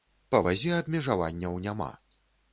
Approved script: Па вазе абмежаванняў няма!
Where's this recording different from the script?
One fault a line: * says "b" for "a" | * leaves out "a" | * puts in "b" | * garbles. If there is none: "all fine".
all fine